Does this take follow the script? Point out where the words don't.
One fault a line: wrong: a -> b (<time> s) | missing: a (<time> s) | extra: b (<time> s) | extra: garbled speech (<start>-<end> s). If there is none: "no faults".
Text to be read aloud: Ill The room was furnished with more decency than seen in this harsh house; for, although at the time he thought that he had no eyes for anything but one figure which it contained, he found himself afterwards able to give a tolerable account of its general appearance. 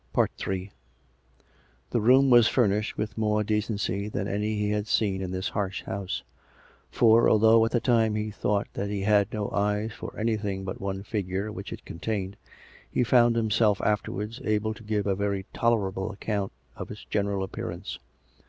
extra: any he had (4.3 s)
extra: very (15.2 s)